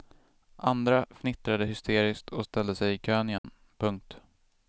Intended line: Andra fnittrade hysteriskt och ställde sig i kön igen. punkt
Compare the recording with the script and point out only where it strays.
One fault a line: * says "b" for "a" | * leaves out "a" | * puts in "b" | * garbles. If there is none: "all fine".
all fine